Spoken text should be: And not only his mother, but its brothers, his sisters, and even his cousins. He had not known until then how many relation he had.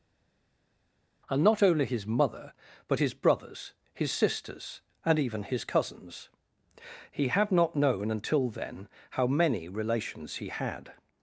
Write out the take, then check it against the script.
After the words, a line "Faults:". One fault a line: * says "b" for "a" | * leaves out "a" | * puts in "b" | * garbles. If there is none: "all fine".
And not only his mother, but his brothers, his sisters, and even his cousins. He had not known until then how many relations he had.
Faults:
* says "his" for "its"
* says "relations" for "relation"